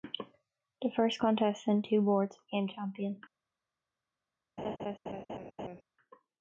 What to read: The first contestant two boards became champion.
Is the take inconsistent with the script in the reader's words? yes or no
no